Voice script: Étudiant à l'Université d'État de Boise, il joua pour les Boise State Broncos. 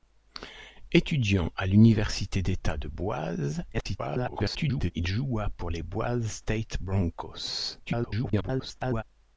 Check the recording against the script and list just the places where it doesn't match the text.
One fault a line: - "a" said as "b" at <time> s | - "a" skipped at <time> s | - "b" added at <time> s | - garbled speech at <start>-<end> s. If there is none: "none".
- garbled speech at 3.7-4.9 s
- garbled speech at 7.9-9.0 s